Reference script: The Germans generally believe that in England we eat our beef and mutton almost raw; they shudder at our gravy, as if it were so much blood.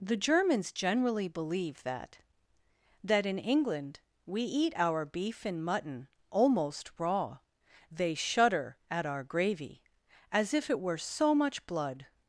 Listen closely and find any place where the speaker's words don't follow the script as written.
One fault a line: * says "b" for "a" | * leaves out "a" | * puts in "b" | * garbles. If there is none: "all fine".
* puts in "that"